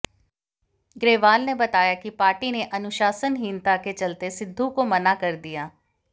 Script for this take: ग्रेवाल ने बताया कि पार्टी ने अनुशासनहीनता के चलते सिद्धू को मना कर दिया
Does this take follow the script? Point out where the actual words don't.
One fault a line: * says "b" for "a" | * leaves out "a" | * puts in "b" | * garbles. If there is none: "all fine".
all fine